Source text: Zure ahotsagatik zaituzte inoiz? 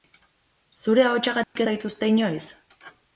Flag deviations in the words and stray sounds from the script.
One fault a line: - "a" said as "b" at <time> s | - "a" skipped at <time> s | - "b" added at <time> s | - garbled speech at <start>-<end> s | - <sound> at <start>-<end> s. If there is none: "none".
- dropout at 1.4-1.6 s